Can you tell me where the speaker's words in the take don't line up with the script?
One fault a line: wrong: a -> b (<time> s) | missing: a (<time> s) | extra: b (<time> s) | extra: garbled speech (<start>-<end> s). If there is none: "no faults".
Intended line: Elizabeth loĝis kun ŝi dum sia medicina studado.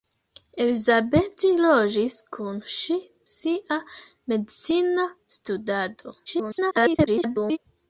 missing: dum (3.0 s)
extra: garbled speech (6.3-7.6 s)